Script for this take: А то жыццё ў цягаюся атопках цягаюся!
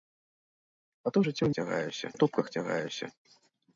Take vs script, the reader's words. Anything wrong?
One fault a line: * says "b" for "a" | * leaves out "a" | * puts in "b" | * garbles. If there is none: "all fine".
all fine